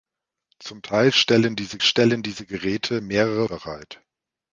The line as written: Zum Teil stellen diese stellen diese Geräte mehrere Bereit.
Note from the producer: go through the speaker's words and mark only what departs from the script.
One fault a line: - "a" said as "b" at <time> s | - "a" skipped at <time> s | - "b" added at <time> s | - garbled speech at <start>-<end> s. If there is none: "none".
none